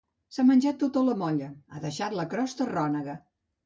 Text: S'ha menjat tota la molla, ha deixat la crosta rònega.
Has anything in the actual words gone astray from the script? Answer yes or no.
no